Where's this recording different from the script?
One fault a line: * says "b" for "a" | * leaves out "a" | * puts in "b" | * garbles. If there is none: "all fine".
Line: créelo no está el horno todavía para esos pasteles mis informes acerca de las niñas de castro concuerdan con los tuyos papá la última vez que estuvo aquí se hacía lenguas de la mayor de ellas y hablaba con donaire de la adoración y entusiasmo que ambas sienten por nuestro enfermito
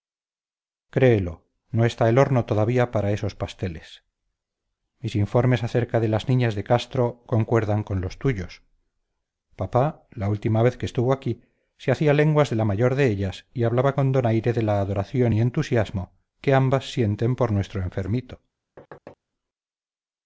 all fine